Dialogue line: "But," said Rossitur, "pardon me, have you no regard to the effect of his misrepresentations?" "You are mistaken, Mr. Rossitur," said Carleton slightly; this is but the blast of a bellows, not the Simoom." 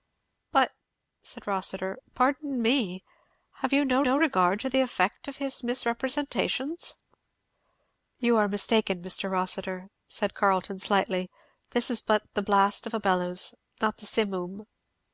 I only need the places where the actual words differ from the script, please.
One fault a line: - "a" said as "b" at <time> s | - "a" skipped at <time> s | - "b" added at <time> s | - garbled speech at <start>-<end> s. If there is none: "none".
- "no" added at 4.0 s